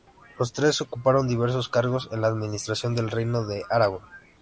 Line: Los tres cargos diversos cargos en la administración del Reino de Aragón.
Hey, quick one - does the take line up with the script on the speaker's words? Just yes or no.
no